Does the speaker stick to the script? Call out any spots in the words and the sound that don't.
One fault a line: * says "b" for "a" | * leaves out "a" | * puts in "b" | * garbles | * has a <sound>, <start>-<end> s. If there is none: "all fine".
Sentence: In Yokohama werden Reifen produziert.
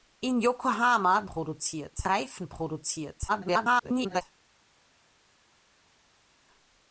* says "produziert" for "werden"
* garbles